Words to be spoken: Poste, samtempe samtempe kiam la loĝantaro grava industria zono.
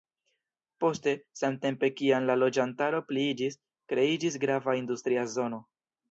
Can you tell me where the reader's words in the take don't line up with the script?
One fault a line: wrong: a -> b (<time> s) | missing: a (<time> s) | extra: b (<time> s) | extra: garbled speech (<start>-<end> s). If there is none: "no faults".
missing: samtempe (1.9 s)
extra: pliiĝis kreiĝis (3.1 s)